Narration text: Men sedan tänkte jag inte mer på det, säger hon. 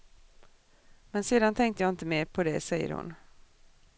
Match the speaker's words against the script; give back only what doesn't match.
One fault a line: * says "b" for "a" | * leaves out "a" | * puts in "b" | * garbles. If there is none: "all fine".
all fine